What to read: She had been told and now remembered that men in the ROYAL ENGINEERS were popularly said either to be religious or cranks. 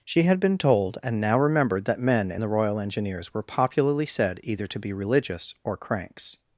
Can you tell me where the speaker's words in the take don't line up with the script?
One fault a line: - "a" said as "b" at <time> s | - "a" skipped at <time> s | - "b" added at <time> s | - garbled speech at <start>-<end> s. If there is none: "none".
none